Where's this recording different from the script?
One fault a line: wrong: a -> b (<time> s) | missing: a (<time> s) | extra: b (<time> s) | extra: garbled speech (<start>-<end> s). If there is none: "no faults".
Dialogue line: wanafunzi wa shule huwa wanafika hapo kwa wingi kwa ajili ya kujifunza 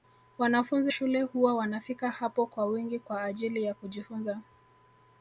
missing: wa (0.9 s)